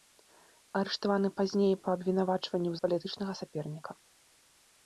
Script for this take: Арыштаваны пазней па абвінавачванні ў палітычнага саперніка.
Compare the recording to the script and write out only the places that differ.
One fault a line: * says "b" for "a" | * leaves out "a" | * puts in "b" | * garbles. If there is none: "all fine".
all fine